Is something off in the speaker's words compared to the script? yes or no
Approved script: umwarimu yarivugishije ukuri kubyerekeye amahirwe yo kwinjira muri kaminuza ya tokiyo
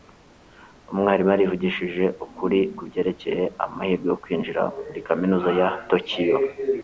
no